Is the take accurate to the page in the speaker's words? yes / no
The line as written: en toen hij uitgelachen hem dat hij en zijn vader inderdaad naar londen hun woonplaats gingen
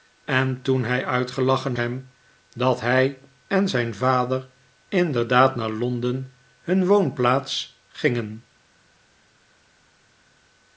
yes